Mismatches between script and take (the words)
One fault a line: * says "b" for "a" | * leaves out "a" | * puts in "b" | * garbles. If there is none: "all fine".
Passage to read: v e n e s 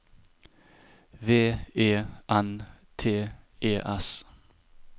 * puts in "t"